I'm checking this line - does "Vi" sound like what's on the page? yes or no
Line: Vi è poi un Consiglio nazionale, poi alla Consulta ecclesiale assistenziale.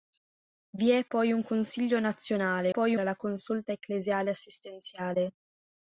yes